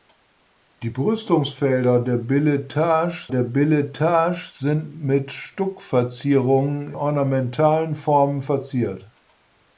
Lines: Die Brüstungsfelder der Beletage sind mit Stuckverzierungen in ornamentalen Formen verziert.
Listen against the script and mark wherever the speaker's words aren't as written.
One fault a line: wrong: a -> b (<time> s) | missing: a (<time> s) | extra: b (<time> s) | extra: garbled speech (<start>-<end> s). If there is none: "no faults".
extra: der Beletage (3.3 s)
missing: in (6.9 s)